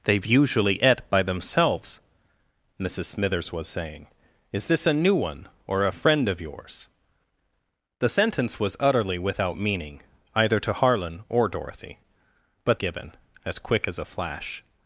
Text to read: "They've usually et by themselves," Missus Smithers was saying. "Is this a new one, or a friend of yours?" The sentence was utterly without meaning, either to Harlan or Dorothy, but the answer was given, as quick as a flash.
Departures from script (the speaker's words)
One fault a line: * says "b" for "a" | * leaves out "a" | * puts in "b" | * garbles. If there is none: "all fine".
* leaves out "the answer was"